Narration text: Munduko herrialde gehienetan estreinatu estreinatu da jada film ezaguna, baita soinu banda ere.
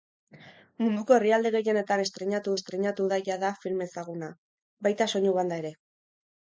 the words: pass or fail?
pass